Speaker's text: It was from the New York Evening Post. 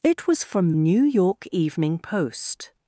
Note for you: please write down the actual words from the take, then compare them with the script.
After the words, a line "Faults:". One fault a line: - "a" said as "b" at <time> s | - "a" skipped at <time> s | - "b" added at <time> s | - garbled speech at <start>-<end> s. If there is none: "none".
It was from New York Evening Post.
Faults:
- "the" skipped at 0.7 s